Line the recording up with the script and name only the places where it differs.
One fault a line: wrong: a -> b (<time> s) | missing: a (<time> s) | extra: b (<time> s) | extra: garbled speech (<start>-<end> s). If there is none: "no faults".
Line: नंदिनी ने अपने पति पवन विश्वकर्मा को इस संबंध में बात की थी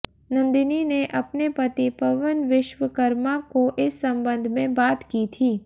no faults